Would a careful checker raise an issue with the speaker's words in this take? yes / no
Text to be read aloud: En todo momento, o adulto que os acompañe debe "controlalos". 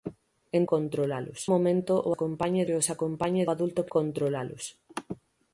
yes